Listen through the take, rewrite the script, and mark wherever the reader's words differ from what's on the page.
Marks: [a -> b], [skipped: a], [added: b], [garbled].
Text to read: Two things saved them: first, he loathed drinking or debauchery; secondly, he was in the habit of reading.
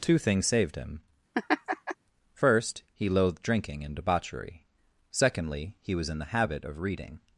Two things saved [them: -> him] first, he loathed drinking [or -> and] debauchery; secondly, he was in the habit of reading.